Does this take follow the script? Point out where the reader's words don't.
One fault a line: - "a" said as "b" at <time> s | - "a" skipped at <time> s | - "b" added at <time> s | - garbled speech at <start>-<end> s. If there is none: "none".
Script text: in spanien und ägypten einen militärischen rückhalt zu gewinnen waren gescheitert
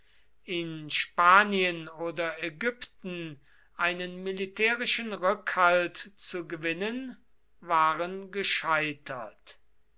- "und" said as "oder" at 1.9 s